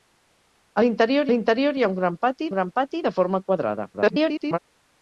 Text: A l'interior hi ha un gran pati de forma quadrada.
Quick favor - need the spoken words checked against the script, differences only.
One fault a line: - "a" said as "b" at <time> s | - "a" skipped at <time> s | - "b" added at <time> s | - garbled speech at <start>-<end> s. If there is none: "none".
- "l'interior" added at 1.3 s
- "gran pati" added at 2.5 s
- garbled speech at 3.9-4.6 s